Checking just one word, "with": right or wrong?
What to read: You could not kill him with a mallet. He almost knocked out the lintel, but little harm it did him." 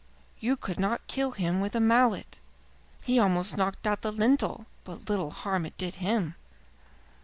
right